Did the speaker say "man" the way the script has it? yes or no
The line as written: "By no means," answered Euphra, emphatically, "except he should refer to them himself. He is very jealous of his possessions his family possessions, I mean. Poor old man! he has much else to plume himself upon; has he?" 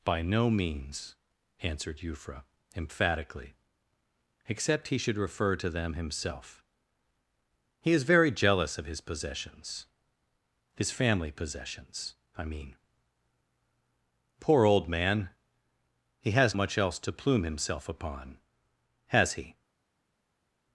yes